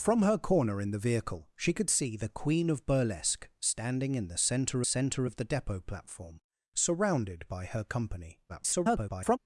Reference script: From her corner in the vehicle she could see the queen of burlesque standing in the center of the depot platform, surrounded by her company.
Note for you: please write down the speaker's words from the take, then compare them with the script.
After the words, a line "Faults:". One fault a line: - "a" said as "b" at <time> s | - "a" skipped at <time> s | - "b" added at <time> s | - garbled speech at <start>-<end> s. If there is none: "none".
From her corner in the vehicle she could see the queen of burlesque standing in the center center of the depot platform, surrounded by her company. [garbled]
Faults:
- "center" added at 4.8 s
- garbled speech at 8.5-9.4 s